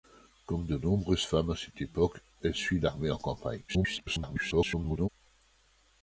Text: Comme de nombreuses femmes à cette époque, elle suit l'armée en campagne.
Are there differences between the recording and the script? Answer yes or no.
yes